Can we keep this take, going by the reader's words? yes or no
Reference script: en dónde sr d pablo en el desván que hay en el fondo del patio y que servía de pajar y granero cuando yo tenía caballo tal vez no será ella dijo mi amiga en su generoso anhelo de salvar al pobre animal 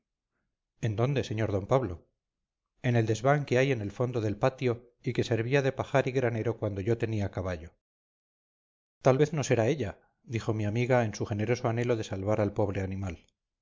yes